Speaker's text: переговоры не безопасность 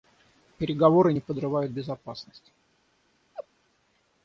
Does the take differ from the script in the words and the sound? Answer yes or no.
yes